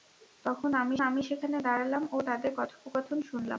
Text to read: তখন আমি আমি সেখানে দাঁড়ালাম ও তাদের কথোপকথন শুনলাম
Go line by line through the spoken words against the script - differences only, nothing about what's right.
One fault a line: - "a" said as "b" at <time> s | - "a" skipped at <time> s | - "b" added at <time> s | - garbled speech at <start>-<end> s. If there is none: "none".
none